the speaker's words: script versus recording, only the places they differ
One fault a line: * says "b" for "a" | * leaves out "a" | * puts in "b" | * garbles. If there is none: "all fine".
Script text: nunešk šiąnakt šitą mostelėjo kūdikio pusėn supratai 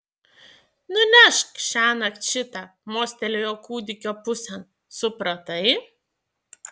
all fine